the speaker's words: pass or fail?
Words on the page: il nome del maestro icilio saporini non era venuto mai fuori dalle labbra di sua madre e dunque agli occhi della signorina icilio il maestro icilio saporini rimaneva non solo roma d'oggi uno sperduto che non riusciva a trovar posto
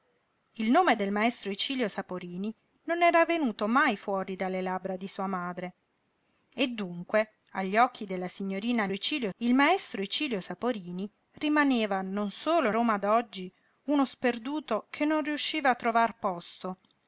pass